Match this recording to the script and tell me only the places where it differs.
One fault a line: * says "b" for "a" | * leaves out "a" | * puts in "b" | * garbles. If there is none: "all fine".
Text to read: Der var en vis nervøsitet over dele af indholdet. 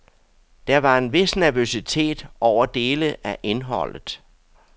all fine